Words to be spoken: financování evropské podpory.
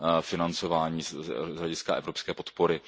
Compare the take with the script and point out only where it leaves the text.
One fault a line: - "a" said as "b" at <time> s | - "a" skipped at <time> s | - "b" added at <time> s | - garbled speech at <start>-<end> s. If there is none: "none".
- "z hlediska" added at 1.0 s